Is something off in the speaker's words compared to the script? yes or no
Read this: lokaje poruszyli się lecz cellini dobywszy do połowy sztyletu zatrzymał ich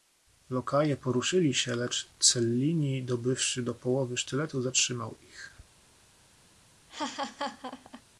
no